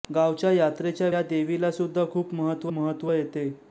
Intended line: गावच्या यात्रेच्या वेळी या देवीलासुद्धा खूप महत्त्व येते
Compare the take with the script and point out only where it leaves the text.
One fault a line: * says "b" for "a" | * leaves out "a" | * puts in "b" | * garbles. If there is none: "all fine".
* leaves out "वेळी"
* puts in "महत्त्व"